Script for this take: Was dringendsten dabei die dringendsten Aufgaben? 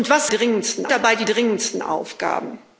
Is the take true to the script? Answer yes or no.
yes